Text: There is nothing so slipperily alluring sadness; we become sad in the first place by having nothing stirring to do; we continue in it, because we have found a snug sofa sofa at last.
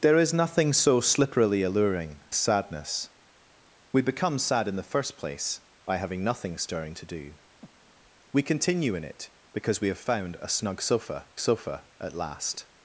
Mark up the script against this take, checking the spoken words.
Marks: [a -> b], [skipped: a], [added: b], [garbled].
There is nothing so slipperily alluring sadness; we become sad in the first place by having nothing stirring to do; we continue in it, because we have found a snug sofa sofa at last.